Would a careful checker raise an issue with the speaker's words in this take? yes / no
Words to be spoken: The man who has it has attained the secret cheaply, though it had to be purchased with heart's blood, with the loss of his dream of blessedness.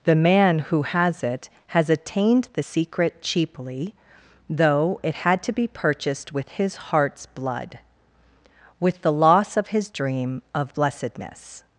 yes